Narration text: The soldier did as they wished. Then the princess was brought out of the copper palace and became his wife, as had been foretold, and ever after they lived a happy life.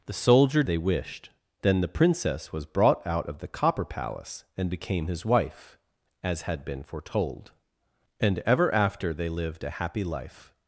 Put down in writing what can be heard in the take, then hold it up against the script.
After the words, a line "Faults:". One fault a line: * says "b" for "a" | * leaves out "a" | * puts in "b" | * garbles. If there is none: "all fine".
The soldier they wished. Then the princess was brought out of the copper palace and became his wife, as had been foretold, and ever after they lived a happy life.
Faults:
* leaves out "did as"